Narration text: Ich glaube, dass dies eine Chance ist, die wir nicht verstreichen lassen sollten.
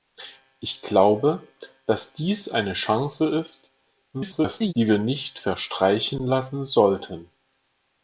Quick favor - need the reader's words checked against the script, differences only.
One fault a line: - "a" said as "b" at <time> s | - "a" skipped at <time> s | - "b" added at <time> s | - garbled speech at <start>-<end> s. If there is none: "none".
- garbled speech at 4.1-4.7 s